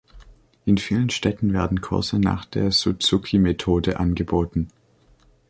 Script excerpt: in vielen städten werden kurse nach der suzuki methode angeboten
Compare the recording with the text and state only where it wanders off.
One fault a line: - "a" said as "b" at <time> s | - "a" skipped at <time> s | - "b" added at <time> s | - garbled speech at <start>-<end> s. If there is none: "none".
none